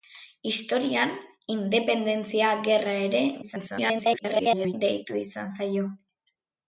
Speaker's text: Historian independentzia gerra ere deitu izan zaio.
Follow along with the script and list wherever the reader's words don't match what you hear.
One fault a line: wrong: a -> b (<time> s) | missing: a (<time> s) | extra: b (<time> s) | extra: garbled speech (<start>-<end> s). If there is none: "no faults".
extra: garbled speech (3.4-4.7 s)